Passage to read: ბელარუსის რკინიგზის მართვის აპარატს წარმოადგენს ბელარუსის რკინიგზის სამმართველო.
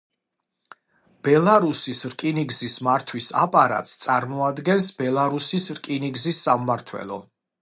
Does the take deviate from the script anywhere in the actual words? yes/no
no